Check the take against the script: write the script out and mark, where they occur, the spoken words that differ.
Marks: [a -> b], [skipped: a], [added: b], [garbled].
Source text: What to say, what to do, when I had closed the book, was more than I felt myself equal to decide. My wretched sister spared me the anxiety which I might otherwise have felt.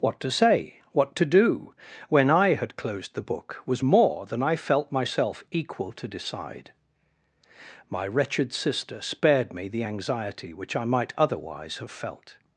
What to say, what to do, when I had closed the book, was more than I felt myself equal to decide. My wretched sister spared me the anxiety which I might otherwise have felt.